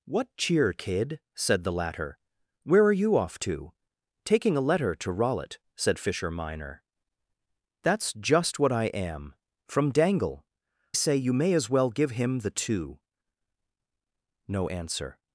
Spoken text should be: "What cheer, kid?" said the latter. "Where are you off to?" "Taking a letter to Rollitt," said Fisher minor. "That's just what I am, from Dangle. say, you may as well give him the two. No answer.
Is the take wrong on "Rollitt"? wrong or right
right